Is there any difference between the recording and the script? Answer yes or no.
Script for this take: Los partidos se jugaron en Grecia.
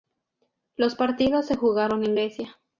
no